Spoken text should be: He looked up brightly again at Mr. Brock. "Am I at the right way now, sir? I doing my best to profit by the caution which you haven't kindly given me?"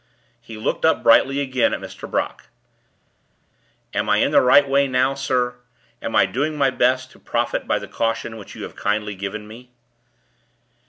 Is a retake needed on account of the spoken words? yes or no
yes